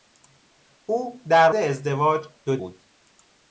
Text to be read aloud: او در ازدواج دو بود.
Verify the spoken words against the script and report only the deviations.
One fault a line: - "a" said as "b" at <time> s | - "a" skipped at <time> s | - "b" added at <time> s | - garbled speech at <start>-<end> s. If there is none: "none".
none